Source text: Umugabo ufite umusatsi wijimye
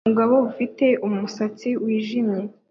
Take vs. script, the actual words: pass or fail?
pass